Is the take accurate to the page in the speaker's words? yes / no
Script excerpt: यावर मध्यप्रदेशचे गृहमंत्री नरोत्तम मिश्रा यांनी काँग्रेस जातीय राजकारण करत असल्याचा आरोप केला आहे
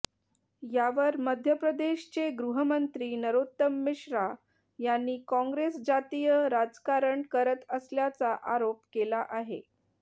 yes